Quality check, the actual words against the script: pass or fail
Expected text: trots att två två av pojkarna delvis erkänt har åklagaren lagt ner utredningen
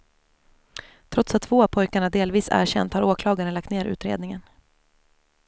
fail